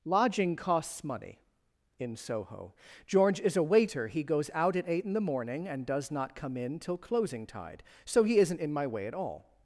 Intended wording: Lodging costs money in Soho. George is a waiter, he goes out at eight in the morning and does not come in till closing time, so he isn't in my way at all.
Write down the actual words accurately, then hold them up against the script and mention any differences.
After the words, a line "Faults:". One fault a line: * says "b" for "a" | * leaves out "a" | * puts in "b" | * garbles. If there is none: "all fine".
Lodging costs money in Soho. George is a waiter, he goes out at eight in the morning and does not come in till closing tide, so he isn't in my way at all.
Faults:
* says "tide" for "time"